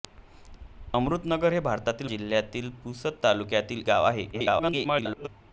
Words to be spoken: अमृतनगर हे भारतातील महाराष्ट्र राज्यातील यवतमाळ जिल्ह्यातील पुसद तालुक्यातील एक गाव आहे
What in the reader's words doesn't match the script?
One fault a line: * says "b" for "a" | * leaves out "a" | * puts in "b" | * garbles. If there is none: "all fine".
* leaves out "महाराष्ट्र राज्यातील यवतमाळ"
* leaves out "एक"
* garbles